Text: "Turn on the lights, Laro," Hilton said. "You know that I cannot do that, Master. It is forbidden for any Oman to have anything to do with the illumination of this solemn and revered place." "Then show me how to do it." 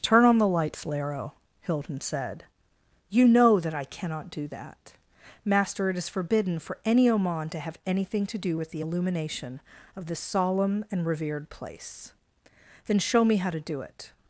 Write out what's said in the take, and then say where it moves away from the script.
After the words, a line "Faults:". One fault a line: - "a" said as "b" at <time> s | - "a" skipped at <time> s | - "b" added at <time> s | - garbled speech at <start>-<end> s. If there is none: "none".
"Turn on the lights, Laro," Hilton said. "You know that I cannot do that, Master. It is forbidden for any Oman to have anything to do with the illumination of this solemn and revered place." "Then show me how to do it."
Faults:
none